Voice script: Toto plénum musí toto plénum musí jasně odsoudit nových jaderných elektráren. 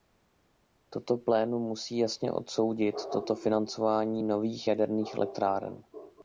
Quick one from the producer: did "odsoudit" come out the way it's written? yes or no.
no